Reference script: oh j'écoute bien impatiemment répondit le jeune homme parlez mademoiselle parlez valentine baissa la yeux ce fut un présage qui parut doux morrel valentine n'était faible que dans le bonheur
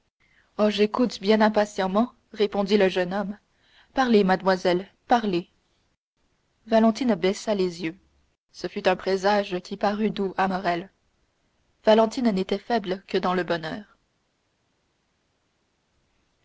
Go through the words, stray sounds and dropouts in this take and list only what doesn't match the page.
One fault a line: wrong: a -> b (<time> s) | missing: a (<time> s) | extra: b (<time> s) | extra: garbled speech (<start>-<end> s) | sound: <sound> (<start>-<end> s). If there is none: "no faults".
wrong: la -> les (7.5 s)
extra: à (10.4 s)